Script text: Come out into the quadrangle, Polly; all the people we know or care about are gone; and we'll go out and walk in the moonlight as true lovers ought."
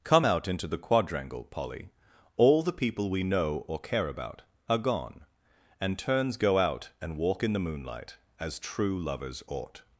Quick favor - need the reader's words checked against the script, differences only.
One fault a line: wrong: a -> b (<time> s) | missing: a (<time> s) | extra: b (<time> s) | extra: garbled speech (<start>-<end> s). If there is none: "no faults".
wrong: we'll -> turns (6.0 s)